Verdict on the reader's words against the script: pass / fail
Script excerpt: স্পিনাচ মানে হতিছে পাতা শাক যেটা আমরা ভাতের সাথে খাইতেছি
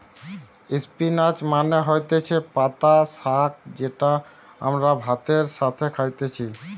pass